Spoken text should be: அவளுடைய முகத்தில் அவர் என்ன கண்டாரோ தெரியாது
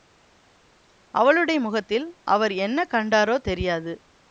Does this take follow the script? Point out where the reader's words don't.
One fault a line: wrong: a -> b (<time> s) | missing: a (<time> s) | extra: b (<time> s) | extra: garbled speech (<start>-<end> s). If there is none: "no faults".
no faults